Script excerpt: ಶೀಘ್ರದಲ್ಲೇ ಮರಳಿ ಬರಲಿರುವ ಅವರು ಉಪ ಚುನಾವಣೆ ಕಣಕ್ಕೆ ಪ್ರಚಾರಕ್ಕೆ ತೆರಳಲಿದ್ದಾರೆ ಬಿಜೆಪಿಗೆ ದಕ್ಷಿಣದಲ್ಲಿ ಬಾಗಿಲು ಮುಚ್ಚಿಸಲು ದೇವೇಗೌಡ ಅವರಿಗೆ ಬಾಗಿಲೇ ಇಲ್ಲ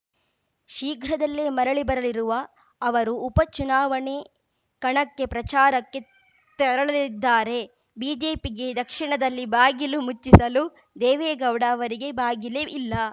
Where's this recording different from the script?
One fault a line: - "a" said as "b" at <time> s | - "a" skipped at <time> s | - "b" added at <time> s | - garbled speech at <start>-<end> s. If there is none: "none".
none